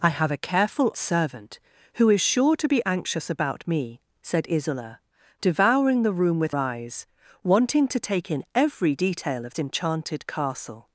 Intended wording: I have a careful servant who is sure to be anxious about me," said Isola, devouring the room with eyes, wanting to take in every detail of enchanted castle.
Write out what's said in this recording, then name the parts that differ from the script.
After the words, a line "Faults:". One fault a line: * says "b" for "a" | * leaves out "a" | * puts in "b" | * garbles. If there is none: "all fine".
I have a careful servant who is sure to be anxious about me," said Isola, devouring the room with eyes, wanting to take in every detail of enchanted castle.
Faults:
all fine